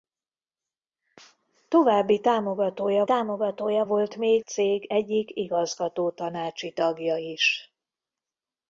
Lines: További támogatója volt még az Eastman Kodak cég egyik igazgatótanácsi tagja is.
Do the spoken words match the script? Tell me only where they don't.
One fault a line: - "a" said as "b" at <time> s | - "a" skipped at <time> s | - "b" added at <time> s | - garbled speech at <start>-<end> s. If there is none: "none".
- "támogatója" added at 3.0 s
- "az Eastman Kodak" skipped at 4.5 s